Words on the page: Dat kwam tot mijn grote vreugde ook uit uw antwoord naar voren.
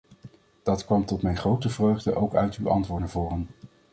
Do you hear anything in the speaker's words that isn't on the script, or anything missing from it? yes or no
no